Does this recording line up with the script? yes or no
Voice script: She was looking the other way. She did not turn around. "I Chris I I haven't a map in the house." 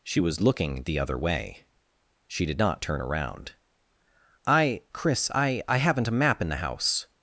yes